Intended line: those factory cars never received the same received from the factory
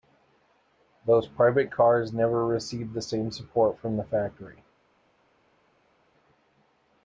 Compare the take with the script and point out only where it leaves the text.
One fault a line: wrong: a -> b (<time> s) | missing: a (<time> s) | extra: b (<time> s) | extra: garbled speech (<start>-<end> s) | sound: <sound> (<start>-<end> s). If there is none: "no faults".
wrong: factory -> private (1.3 s)
wrong: received -> support (3.3 s)